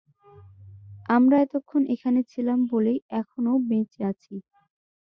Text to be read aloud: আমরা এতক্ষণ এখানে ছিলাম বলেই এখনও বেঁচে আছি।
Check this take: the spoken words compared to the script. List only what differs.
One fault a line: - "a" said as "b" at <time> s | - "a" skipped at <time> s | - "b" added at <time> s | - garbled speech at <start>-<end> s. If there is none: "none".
none